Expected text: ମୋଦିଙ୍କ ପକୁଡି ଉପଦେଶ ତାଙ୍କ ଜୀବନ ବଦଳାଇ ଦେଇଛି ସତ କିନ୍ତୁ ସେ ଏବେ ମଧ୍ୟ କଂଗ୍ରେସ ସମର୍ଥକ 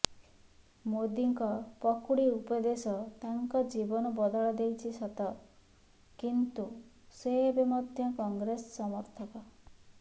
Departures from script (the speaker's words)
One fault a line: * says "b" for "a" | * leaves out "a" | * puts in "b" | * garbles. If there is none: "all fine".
all fine